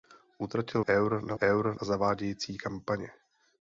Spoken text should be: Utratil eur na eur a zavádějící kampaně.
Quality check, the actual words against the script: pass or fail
pass